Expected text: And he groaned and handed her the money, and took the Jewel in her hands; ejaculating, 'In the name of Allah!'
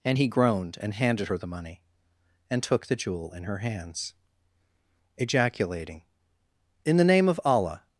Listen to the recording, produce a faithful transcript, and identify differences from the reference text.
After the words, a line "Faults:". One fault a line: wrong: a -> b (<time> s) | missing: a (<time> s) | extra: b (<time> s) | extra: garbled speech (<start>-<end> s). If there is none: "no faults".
And he groaned and handed her the money, and took the Jewel in her hands; ejaculating, 'In the name of Allah!'
Faults:
no faults